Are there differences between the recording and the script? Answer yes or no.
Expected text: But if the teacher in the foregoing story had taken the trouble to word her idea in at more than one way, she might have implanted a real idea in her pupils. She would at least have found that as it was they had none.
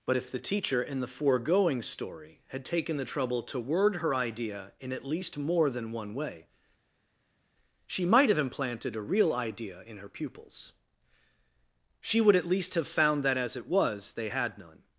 yes